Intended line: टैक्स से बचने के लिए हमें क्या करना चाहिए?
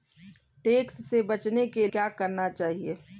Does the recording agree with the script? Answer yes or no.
no